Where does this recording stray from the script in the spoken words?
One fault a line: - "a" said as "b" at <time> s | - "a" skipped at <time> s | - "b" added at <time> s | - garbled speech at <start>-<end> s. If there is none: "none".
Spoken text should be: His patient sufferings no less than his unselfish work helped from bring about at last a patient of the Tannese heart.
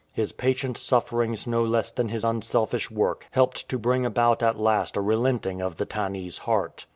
- "from" said as "to" at 3.7 s
- "patient" said as "relenting" at 5.0 s